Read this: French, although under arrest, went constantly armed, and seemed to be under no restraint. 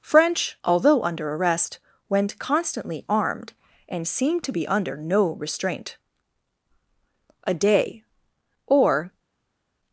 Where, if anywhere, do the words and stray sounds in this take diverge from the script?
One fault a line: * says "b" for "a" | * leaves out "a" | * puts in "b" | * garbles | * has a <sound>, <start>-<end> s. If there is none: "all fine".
* puts in "A day or"